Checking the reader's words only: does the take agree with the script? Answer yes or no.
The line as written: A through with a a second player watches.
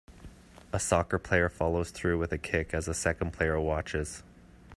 no